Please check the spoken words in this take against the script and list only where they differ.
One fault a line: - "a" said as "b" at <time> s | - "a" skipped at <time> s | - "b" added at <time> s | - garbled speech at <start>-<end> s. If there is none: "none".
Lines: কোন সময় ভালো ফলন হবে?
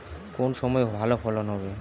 none